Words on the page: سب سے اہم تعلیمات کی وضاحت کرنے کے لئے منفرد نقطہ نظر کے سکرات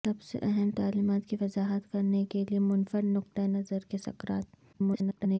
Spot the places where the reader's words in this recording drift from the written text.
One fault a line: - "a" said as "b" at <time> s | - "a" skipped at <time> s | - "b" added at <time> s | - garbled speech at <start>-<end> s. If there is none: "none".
- garbled speech at 4.7-5.4 s